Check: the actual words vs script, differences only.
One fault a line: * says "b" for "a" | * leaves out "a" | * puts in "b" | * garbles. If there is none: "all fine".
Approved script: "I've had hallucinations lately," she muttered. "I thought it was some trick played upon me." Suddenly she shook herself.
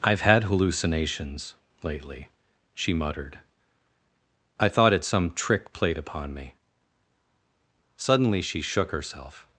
* leaves out "was"